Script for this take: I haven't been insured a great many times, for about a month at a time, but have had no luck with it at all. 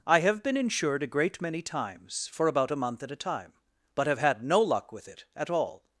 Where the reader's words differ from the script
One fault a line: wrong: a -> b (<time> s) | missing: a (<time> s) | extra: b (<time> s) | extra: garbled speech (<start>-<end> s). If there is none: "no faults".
wrong: haven't -> have (0.2 s)